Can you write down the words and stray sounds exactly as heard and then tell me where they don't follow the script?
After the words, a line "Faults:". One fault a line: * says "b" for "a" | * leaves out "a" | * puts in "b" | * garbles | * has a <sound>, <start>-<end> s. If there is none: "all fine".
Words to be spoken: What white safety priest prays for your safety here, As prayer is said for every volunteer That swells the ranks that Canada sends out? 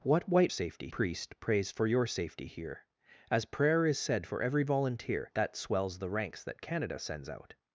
What white safety priest prays for your safety here, As prayer is said for every volunteer That swells the ranks that Canada sends out?
Faults:
all fine